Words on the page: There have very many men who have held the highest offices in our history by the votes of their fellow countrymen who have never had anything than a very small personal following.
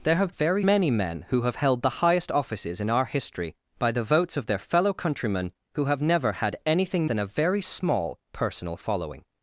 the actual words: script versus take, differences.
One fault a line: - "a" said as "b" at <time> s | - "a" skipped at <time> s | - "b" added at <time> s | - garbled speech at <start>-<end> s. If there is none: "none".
none